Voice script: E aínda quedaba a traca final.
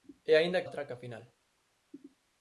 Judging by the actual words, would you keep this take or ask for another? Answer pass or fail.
fail